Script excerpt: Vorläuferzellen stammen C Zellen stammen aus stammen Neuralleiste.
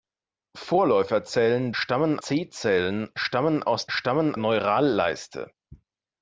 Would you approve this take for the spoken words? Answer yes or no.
yes